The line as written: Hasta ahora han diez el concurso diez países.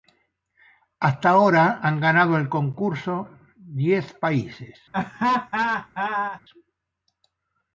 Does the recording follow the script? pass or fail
fail